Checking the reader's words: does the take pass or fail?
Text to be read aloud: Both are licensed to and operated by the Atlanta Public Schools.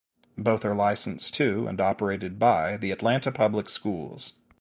pass